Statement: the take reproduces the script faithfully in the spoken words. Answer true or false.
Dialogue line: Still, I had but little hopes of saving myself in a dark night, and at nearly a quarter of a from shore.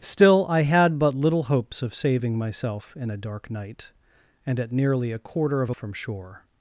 true